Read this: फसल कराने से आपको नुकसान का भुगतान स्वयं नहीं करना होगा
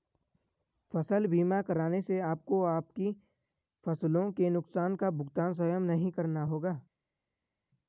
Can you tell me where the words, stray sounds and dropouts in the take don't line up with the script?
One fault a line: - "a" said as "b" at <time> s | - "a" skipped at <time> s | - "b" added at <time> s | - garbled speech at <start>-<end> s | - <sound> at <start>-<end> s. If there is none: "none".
- "बीमा" added at 1.3 s
- "आपकी फसलों के" added at 2.6 s